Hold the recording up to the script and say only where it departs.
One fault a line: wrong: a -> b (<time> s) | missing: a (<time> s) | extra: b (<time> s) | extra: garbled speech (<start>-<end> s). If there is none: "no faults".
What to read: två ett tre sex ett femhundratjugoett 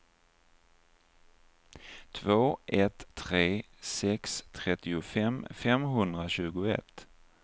wrong: ett -> trettiofem (4.5 s)